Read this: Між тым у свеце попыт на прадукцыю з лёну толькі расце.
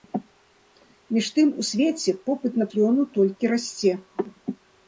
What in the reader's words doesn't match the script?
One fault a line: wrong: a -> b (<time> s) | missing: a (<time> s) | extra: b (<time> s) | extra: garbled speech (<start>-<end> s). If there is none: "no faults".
missing: прадукцыю (2.7 s)